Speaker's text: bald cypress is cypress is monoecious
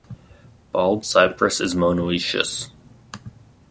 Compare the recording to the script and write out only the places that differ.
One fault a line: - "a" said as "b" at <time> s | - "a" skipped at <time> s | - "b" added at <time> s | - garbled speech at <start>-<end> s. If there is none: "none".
- "cypress is" skipped at 1.7 s